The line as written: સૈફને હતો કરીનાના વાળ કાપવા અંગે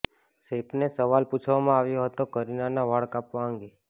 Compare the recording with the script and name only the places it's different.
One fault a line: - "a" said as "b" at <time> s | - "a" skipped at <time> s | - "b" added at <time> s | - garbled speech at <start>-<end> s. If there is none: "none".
- "સવાલ પૂછવામાં આવ્યો" added at 0.9 s